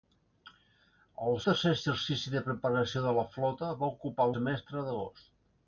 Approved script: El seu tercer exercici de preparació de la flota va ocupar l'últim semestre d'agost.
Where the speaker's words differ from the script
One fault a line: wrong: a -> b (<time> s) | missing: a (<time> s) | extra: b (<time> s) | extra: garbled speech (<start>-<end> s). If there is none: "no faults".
missing: seu (1.4 s)
missing: l'últim (4.3 s)